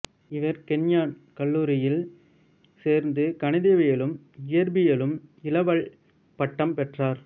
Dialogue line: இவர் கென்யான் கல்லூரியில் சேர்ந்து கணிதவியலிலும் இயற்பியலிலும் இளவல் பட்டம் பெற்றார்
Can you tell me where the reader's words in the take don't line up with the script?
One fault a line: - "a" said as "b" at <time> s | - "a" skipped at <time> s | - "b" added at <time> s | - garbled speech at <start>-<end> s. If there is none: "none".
none